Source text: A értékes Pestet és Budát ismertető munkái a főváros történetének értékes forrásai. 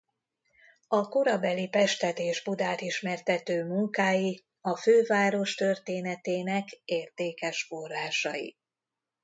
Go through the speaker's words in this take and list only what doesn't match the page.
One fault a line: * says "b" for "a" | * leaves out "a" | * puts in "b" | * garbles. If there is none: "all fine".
* says "korabeli" for "értékes"